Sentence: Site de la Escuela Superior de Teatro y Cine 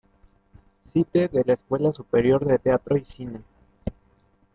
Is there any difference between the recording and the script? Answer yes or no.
no